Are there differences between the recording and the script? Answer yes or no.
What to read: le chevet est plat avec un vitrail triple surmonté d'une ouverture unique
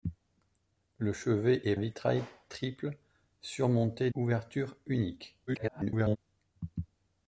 yes